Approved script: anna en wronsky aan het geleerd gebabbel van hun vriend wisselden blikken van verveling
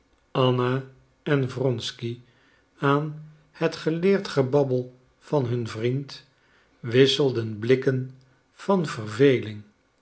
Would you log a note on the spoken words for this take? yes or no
no